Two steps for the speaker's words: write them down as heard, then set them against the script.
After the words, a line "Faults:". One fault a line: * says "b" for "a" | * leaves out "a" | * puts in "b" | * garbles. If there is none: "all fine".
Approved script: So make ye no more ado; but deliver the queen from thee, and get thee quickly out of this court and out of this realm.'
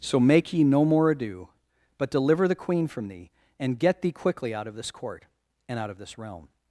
So make ye no more ado; but deliver the queen from thee, and get thee quickly out of this court and out of this realm.'
Faults:
all fine